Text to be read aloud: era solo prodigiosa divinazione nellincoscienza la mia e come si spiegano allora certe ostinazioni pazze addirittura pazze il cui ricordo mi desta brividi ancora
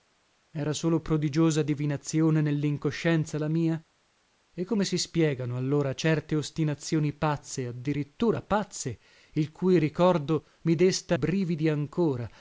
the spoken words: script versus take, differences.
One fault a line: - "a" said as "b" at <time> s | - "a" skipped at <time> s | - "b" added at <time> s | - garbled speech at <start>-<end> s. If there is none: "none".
none